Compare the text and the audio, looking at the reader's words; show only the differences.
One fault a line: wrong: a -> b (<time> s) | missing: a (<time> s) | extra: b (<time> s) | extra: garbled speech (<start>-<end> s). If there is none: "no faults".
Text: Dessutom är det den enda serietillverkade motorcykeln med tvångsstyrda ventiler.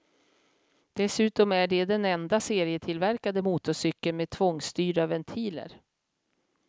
no faults